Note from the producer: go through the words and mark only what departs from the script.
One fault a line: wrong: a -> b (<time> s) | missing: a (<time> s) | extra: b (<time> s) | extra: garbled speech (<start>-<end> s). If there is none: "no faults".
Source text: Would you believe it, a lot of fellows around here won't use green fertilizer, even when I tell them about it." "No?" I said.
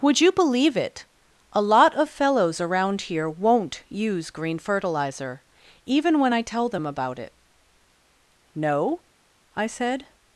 no faults